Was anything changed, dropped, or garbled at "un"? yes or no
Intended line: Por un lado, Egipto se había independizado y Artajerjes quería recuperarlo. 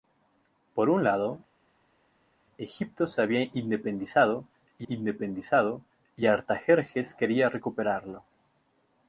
no